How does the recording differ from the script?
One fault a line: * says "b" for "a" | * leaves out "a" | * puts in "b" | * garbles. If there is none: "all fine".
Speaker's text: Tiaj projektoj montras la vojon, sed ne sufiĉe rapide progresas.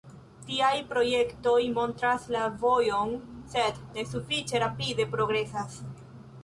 all fine